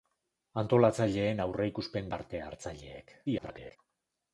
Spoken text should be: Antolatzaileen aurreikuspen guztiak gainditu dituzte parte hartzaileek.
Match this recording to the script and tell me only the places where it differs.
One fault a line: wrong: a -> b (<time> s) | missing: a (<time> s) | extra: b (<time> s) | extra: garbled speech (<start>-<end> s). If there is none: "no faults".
missing: guztiak gainditu dituzte (2.1 s)
extra: garbled speech (3.3-3.8 s)